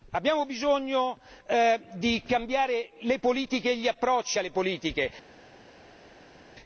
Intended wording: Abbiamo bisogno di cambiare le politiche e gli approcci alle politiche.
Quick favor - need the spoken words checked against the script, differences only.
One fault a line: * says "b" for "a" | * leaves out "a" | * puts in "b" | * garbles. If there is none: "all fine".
all fine